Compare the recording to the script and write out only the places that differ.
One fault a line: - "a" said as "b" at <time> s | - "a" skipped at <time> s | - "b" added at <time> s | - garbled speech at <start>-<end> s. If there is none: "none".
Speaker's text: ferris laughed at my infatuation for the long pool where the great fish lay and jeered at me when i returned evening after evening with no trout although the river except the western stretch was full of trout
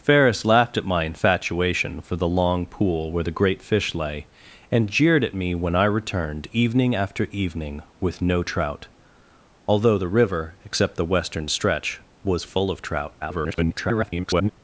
- garbled speech at 13.2-14.5 s